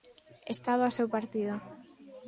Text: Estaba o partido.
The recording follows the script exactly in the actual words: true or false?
false